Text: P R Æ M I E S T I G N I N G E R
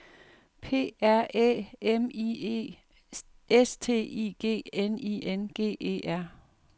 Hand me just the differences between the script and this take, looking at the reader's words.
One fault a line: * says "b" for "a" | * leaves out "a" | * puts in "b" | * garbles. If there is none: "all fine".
all fine